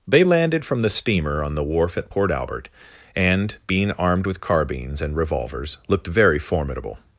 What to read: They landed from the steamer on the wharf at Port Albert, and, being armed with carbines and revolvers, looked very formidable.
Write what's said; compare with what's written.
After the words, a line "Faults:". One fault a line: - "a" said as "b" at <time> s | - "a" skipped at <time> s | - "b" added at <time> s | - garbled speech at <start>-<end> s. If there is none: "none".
They landed from the steamer on the wharf at Port Albert, and, being armed with carbines and revolvers, looked very formidable.
Faults:
none